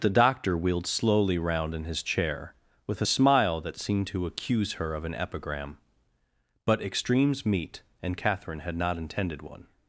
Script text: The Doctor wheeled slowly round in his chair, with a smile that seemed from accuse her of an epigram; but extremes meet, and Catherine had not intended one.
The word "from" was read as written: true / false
false